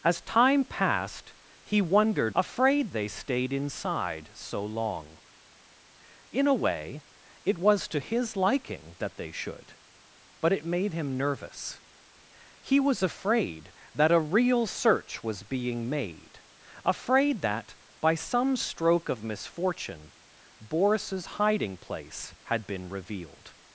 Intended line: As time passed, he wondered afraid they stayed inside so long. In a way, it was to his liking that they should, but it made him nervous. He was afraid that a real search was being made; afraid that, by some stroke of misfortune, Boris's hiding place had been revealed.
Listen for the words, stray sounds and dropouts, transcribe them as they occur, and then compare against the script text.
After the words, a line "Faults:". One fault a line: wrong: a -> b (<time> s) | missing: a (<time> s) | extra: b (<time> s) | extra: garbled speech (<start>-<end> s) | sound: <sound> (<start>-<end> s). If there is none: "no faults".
As time passed, he wondered afraid they stayed inside so long. In a way, it was to his liking that they should, but it made him nervous. He was afraid that a real search was being made; afraid that, by some stroke of misfortune, Boris's hiding place had been revealed.
Faults:
no faults